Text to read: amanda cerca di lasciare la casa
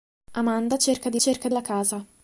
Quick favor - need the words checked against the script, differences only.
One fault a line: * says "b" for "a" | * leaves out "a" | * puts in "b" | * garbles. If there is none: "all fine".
* says "cerca" for "lasciare"